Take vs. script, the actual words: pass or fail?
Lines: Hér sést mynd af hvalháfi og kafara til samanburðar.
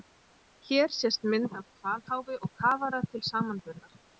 pass